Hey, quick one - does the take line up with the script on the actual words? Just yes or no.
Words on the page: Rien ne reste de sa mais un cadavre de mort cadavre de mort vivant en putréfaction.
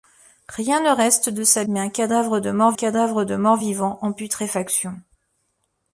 yes